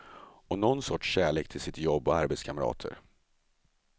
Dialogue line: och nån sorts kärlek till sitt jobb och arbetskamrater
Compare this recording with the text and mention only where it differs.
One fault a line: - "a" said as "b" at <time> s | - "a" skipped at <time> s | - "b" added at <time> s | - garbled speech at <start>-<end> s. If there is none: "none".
none